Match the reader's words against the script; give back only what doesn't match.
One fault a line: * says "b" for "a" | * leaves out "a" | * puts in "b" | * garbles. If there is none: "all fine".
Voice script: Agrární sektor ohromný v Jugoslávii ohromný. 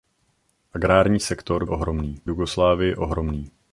all fine